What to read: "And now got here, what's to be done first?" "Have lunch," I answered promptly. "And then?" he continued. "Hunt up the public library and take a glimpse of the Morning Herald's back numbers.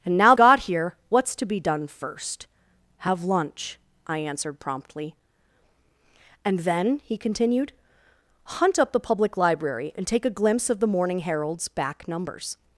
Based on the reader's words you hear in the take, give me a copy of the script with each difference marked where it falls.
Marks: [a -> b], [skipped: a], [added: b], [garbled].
"And now got here, what's to be done first?" "Have lunch," I answered promptly. "And then?" he continued. "Hunt up the public library and take a glimpse of the Morning Herald's back numbers.